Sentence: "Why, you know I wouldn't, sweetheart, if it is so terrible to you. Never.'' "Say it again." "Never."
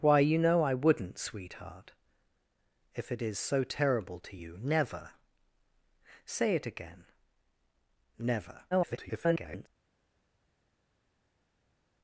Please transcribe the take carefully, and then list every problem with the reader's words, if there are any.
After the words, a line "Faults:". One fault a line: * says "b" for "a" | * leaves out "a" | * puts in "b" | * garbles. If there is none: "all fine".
"Why, you know I wouldn't, sweetheart, if it is so terrible to you. Never.'' "Say it again." "Never." [garbled]
Faults:
* garbles